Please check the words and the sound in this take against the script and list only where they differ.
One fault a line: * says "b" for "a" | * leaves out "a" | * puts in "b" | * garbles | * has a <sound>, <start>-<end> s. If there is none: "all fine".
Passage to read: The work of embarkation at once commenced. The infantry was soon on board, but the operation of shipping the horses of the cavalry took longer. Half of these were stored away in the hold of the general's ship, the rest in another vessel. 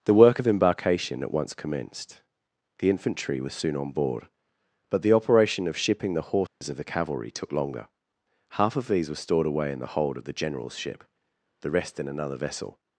* has a dropout, 6.5-6.6 s